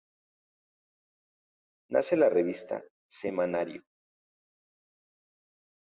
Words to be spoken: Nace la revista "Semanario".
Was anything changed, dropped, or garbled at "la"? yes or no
no